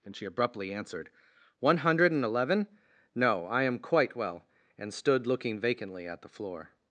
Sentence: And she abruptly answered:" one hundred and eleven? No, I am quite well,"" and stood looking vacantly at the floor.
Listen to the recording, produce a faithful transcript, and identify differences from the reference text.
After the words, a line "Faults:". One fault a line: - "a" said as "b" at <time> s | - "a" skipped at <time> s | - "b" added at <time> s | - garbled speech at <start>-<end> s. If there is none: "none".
And she abruptly answered:" one hundred and eleven? No, I am quite well,"" and stood looking vacantly at the floor.
Faults:
none